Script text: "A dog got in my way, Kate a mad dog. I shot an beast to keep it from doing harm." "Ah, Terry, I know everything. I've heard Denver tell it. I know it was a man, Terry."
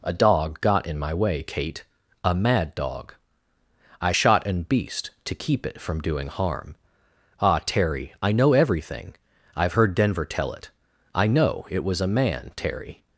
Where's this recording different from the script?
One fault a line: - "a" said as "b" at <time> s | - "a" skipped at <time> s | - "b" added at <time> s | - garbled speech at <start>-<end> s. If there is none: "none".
none